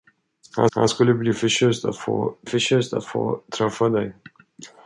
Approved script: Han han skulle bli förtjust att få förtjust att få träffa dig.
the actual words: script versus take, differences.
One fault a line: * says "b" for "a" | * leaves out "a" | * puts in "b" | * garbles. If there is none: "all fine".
all fine